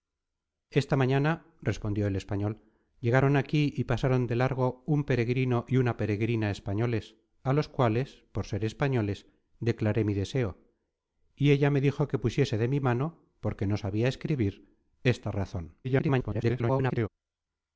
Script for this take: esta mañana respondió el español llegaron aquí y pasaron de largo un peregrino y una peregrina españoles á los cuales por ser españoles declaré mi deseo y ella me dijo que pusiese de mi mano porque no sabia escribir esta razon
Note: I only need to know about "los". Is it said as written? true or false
true